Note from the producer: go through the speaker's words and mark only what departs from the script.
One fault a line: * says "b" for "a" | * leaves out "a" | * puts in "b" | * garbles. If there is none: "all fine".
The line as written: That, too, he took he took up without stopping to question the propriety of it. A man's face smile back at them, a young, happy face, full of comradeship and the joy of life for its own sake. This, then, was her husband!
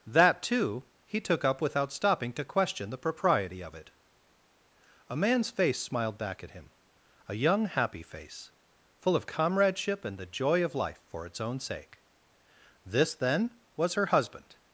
* leaves out "he took"
* says "smiled" for "smile"
* says "him" for "them"